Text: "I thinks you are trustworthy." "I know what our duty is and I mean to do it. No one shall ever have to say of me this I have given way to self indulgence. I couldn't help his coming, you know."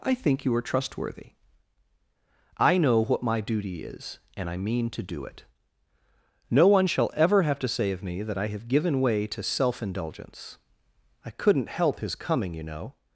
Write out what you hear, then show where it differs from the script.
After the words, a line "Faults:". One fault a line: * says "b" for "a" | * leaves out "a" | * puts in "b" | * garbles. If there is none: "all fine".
"I think you are trustworthy." "I know what my duty is and I mean to do it. No one shall ever have to say of me that I have given way to self indulgence. I couldn't help his coming, you know."
Faults:
* says "think" for "thinks"
* says "my" for "our"
* says "that" for "this"